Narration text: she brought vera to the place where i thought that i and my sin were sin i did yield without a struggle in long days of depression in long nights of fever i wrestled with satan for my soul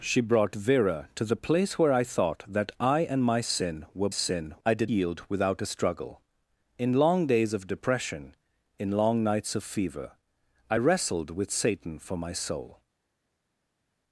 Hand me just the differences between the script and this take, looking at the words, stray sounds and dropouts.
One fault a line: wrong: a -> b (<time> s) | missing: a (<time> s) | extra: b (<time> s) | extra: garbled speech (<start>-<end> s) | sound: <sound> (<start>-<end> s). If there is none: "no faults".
no faults